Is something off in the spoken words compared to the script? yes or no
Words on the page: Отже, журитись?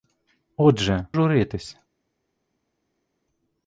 no